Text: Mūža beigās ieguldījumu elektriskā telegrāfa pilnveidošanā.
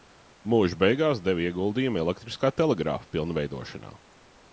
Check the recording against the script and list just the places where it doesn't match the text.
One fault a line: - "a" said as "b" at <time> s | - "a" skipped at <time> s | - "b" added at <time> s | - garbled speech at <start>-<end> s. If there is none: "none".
- "deva" added at 1.3 s